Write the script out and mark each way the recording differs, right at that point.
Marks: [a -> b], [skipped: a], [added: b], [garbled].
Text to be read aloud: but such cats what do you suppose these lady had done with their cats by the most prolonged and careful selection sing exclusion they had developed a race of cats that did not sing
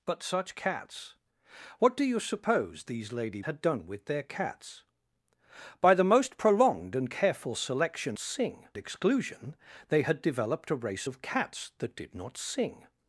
but such cats what do you suppose these lady had done with their cats by the most prolonged and careful selection sing exclusion they had developed a race of cats that did not sing